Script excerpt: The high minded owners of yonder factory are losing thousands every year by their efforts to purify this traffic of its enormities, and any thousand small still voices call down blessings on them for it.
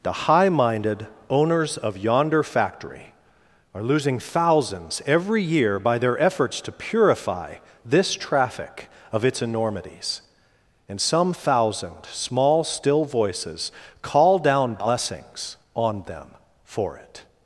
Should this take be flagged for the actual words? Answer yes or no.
yes